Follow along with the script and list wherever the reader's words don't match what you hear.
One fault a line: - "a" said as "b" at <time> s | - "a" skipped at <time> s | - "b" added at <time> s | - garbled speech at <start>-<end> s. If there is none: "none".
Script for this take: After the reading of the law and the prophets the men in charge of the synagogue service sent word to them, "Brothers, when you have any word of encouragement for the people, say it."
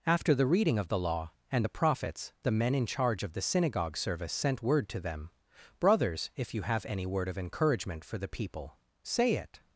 - "when" said as "if" at 6.4 s